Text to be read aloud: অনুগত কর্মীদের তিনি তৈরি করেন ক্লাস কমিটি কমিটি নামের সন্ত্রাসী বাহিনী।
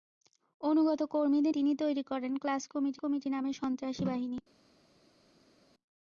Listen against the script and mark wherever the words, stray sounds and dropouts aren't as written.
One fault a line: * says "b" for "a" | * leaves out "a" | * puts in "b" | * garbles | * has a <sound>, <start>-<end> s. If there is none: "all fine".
all fine